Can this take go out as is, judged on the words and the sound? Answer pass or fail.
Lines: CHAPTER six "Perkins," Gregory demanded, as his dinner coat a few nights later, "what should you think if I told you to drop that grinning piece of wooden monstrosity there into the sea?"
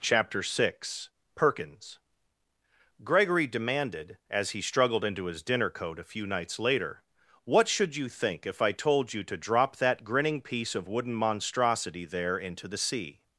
fail